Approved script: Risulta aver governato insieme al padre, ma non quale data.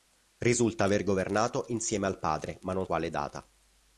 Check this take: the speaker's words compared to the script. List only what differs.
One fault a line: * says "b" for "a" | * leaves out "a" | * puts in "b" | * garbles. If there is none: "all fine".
all fine